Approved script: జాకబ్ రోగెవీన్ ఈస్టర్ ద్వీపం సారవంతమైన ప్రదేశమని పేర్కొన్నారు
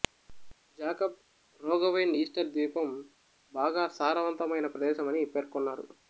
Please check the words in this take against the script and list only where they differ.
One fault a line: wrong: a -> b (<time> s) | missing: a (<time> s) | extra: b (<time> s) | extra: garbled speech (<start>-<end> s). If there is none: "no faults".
extra: బాగా (3.5 s)